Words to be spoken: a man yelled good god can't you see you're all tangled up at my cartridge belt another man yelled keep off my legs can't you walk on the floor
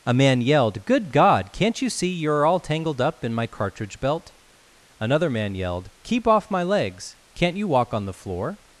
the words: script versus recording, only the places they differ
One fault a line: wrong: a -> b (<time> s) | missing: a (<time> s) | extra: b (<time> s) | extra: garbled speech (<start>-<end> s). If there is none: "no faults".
wrong: at -> in (3.2 s)